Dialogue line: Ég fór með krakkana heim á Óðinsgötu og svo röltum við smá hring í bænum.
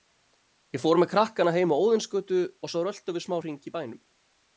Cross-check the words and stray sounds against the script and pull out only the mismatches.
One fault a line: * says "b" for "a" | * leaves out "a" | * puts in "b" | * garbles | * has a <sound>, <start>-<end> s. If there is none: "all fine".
all fine